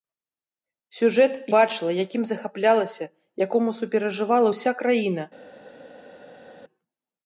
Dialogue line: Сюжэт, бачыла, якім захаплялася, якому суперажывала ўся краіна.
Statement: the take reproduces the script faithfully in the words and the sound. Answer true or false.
true